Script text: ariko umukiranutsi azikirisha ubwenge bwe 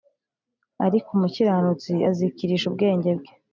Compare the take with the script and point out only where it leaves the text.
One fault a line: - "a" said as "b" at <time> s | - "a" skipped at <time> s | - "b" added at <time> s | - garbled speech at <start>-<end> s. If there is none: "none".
none